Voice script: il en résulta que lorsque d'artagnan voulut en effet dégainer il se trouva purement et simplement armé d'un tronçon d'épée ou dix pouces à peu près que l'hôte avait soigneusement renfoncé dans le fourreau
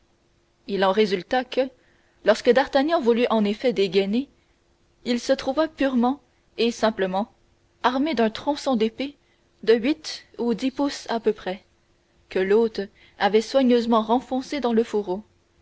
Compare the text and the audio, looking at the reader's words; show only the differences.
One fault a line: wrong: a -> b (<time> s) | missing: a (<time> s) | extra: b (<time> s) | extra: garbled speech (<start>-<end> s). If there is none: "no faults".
extra: de huit (9.6 s)